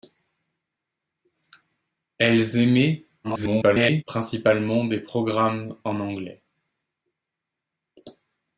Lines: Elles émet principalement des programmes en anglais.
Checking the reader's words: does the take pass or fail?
fail